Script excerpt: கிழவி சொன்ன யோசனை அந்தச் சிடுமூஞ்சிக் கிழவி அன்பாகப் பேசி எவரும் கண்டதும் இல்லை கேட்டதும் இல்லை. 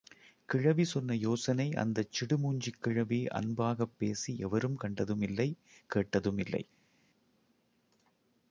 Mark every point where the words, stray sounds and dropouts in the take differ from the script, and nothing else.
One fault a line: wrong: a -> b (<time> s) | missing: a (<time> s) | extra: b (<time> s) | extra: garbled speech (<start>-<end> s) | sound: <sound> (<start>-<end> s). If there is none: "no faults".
no faults